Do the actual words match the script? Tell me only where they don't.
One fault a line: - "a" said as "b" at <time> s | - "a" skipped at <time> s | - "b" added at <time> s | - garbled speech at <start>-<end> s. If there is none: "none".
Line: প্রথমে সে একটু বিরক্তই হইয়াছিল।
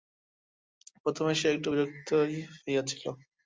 none